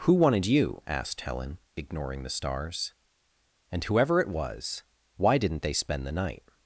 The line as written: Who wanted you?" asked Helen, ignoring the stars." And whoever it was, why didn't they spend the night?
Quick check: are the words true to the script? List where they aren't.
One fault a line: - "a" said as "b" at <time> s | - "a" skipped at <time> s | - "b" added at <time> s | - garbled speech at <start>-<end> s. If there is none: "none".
none